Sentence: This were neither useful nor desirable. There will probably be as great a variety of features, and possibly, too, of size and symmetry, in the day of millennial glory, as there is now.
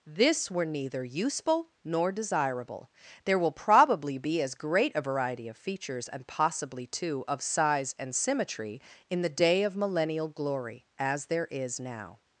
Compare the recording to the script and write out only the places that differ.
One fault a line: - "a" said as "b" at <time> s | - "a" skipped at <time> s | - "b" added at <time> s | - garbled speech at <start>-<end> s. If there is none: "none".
none